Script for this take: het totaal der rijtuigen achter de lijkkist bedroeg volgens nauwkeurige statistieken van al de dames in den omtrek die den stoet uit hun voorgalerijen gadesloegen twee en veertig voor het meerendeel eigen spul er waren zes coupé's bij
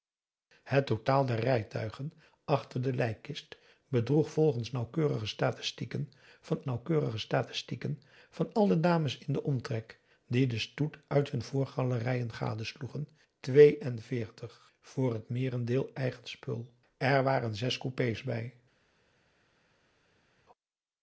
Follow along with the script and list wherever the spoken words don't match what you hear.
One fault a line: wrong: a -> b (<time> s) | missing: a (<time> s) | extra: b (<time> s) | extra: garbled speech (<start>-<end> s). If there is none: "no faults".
extra: nauwkeurige statistieken van (6.6 s)